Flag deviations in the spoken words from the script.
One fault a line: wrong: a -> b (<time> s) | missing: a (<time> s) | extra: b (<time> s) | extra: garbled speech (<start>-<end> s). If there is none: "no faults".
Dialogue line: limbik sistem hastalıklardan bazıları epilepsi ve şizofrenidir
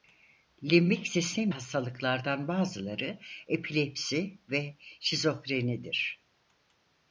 no faults